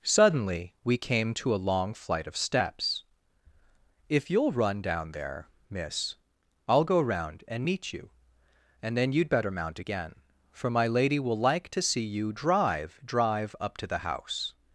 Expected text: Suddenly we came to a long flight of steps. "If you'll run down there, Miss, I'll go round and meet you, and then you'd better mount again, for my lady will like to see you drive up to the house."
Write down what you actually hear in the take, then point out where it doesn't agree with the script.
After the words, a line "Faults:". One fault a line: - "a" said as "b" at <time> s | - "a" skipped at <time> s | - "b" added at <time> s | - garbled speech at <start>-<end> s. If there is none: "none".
Suddenly we came to a long flight of steps. "If you'll run down there, Miss, I'll go round and meet you, and then you'd better mount again, for my lady will like to see you drive drive up to the house."
Faults:
- "drive" added at 13.1 s